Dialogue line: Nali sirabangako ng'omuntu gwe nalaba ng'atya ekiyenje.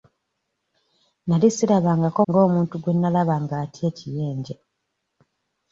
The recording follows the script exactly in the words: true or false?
true